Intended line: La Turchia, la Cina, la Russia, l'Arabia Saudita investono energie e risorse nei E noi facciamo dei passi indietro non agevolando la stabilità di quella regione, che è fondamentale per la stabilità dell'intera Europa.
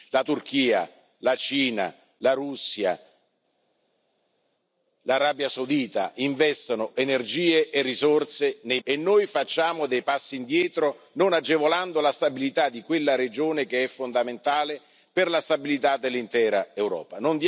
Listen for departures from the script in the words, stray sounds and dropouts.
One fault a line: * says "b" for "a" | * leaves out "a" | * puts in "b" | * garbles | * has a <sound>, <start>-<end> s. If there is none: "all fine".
all fine